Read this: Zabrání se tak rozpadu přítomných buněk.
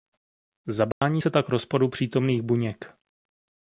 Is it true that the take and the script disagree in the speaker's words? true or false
false